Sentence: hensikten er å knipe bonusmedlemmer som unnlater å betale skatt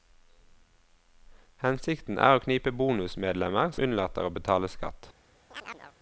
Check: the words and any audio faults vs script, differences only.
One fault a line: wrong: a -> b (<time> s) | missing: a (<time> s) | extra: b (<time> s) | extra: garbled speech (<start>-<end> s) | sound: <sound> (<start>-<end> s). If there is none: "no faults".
missing: som (3.7 s)
sound: chirp (5.5-6.0 s)